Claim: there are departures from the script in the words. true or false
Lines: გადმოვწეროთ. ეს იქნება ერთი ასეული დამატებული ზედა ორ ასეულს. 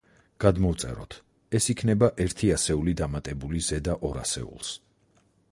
false